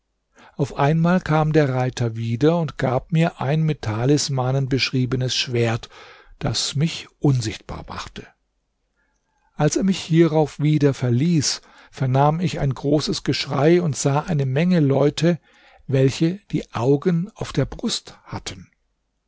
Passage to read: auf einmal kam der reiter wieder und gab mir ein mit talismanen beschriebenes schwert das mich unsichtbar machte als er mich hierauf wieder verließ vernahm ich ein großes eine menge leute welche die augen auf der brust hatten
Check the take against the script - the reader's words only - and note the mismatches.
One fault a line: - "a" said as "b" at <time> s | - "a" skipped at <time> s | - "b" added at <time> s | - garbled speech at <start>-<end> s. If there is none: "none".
- "geschrei und sah" added at 13.2 s